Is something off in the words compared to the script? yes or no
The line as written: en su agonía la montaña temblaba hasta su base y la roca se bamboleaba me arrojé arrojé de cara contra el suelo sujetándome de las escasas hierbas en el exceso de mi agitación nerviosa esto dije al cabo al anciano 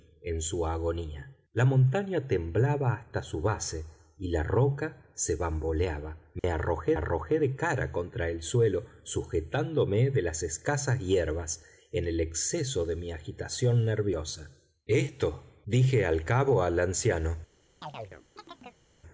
no